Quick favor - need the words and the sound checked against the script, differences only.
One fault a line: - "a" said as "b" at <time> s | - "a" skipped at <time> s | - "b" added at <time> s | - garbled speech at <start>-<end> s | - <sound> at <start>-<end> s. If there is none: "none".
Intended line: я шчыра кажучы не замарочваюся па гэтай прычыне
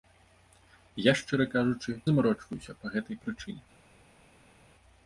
- "не" skipped at 1.9 s